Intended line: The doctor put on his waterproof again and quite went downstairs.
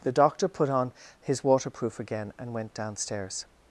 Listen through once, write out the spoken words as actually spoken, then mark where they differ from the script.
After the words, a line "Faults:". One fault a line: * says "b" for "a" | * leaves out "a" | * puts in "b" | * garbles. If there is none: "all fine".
The doctor put on his waterproof again and went downstairs.
Faults:
* leaves out "quite"